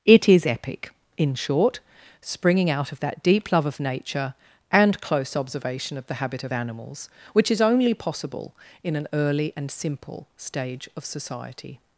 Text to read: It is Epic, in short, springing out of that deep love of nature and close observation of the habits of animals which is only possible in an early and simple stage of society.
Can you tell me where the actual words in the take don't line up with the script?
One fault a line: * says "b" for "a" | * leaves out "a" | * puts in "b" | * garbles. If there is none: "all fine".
* says "habit" for "habits"